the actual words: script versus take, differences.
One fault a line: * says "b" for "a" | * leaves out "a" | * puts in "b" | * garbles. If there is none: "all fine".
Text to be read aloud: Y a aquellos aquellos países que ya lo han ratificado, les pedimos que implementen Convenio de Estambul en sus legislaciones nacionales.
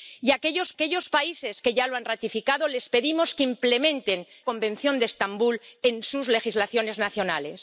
all fine